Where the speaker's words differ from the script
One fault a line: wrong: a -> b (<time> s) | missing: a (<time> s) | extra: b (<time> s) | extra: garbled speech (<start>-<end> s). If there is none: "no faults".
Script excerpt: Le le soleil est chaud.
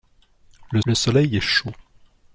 no faults